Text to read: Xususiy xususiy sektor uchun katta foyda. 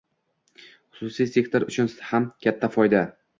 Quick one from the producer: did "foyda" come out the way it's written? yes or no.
yes